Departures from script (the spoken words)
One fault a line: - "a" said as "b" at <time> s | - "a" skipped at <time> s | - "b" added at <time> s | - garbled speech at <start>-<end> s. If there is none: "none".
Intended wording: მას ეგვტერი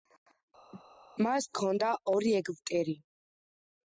- "ჰქონდა ორი" added at 1.5 s